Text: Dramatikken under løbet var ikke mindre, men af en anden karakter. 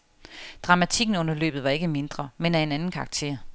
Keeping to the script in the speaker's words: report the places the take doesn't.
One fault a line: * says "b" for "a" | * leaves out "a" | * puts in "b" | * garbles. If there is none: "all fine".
all fine